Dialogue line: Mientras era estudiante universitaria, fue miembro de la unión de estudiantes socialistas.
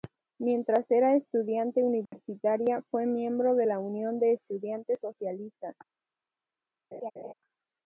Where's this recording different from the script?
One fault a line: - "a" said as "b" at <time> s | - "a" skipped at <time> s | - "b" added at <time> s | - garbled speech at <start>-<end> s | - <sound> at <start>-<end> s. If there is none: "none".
- dropout at 2.1-2.1 s
- laugh at 6.9-7.3 s